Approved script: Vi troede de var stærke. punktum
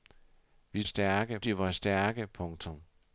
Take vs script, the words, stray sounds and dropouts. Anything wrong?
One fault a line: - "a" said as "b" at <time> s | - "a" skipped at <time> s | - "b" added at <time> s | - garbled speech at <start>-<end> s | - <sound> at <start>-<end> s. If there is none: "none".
- "troede" said as "stærke" at 0.8 s